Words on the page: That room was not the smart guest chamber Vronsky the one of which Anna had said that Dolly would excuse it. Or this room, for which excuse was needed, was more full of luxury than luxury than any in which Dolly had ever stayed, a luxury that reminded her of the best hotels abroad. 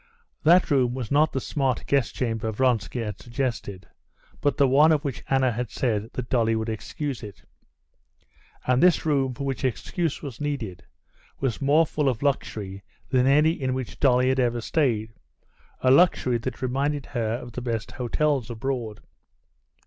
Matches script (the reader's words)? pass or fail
fail